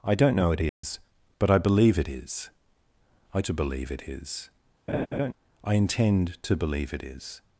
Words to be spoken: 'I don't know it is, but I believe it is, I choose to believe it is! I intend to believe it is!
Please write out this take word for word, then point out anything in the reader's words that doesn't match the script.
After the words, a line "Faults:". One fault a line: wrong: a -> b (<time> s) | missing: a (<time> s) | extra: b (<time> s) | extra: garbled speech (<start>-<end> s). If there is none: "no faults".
'I don't know it is, but I believe it is, I to believe it is! I intend to believe it is!
Faults:
missing: choose (3.4 s)